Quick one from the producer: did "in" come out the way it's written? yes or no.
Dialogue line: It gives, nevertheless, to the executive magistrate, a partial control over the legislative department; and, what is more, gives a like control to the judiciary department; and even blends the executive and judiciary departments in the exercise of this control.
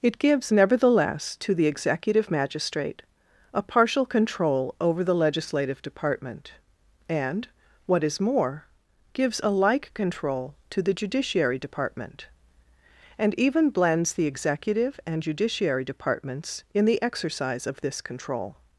yes